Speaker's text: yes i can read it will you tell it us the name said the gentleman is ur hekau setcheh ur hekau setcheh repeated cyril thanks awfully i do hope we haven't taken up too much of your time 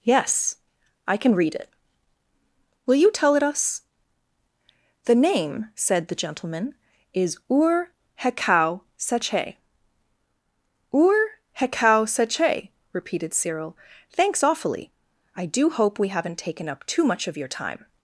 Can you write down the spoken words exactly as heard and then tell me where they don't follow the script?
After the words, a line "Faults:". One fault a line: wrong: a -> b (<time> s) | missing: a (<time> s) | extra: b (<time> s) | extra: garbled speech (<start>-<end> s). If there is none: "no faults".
yes i can read it will you tell it us the name said the gentleman is ur hekau setcheh ur hekau setcheh repeated cyril thanks awfully i do hope we haven't taken up too much of your time
Faults:
no faults